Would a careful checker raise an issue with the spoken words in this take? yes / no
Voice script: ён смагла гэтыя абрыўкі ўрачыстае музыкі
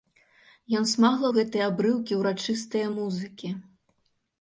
no